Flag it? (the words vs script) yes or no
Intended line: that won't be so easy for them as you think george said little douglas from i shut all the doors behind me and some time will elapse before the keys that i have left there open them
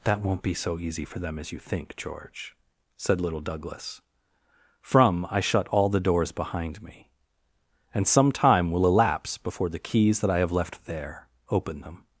no